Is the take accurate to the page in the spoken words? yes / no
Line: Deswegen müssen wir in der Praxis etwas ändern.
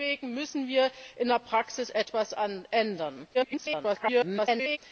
no